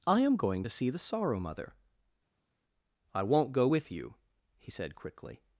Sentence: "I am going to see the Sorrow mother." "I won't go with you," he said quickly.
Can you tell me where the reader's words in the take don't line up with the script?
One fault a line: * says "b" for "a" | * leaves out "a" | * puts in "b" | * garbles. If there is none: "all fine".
all fine